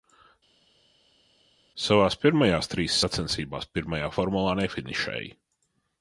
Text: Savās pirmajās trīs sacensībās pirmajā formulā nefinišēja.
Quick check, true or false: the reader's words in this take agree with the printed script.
true